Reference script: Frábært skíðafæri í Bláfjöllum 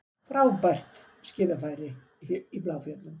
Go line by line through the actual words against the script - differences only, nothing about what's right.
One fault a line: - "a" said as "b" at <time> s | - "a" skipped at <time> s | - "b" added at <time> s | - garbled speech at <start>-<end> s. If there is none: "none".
none